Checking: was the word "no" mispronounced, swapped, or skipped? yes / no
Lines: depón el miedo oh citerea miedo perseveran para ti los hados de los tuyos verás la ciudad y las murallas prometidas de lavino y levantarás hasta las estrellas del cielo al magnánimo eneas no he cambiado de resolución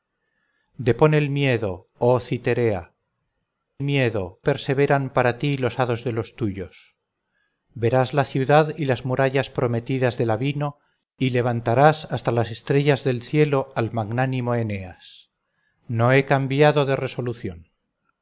no